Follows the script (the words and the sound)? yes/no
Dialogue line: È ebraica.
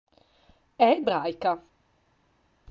yes